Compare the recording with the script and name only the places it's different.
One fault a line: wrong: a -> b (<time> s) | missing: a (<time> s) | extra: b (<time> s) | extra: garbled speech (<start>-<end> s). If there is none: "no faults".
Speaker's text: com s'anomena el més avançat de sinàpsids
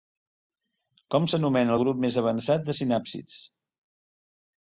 extra: grup (1.8 s)